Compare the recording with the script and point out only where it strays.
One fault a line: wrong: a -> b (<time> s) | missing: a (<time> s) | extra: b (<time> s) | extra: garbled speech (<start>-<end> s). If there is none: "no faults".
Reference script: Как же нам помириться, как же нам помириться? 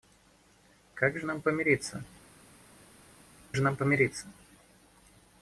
missing: как (2.0 s)